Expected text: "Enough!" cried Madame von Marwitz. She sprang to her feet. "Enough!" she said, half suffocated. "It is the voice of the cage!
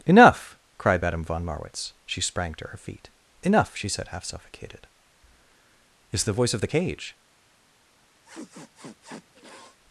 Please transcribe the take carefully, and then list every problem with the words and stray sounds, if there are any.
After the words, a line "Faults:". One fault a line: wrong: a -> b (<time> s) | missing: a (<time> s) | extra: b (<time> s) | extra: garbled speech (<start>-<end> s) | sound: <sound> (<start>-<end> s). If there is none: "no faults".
"Enough!" cried Madame von Marwitz. She sprang to her feet. "Enough!" she said, half suffocated. "It is the voice of the cage!
Faults:
sound: sniff (8.2-9.8 s)